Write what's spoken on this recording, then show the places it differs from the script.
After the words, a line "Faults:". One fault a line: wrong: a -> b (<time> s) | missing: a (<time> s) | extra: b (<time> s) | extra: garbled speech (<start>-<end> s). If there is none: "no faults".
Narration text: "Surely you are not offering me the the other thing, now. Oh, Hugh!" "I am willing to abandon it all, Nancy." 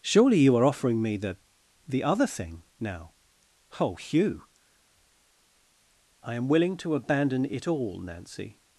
"Surely you are offering me the the other thing, now. Oh, Hugh!" "I am willing to abandon it all, Nancy."
Faults:
missing: not (0.7 s)